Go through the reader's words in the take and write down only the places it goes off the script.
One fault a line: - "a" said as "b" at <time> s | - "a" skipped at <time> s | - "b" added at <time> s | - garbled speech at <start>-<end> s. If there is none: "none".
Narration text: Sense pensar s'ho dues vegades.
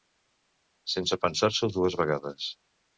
none